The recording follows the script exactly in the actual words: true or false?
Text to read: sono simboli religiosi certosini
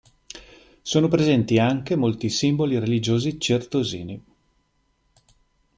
false